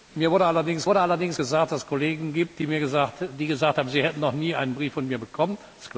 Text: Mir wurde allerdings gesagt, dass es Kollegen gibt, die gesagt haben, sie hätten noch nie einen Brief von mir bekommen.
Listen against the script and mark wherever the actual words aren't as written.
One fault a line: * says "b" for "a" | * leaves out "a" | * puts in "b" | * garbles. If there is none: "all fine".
* puts in "wurde allerdings"